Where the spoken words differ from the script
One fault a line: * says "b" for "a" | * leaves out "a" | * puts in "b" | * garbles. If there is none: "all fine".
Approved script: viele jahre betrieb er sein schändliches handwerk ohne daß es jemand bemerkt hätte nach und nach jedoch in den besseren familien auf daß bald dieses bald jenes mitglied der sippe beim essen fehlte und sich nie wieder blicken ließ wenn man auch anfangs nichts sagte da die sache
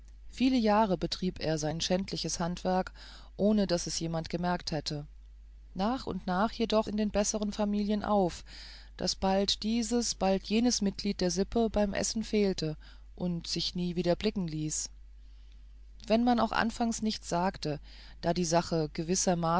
all fine